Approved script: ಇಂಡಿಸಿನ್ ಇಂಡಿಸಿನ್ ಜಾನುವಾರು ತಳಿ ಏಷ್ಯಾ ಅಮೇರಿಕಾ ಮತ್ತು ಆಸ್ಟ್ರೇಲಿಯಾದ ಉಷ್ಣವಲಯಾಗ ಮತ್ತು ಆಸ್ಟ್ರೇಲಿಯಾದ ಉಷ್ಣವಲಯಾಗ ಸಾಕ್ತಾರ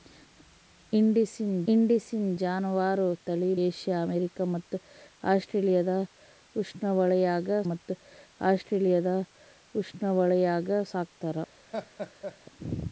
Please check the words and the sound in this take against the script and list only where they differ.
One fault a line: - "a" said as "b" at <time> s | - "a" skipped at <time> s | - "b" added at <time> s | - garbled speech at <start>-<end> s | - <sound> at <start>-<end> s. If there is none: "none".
- laugh at 11.7-12.4 s